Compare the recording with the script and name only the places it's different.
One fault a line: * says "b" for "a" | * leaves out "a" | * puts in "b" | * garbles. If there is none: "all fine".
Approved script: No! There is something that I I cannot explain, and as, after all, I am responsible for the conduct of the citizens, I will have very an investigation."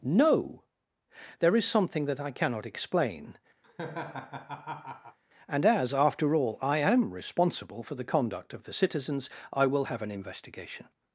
* leaves out "I"
* leaves out "very"